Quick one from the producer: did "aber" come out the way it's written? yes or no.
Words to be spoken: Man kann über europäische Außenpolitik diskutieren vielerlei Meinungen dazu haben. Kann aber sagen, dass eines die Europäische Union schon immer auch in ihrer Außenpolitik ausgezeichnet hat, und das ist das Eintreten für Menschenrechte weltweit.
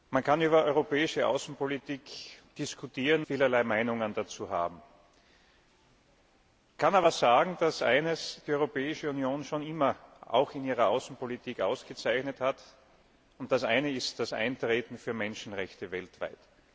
yes